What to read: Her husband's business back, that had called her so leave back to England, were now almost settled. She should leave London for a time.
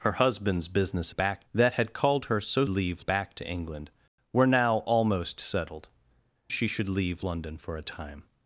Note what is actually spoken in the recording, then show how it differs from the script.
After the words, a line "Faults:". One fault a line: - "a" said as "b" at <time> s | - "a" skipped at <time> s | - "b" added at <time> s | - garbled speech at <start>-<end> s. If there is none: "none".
Her husband's business back, that had called her so leave back to England, were now almost settled. She should leave London for a time.
Faults:
none